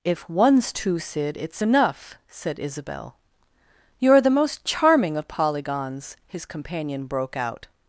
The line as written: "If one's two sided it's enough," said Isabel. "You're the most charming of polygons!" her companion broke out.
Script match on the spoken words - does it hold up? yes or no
no